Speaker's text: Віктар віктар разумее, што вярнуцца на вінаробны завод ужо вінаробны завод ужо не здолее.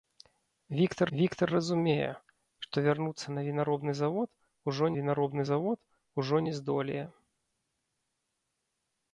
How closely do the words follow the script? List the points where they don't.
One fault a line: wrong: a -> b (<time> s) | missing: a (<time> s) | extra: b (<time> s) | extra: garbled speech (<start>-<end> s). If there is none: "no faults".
no faults